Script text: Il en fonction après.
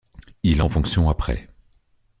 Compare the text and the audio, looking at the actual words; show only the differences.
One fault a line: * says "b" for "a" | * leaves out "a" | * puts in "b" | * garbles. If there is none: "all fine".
all fine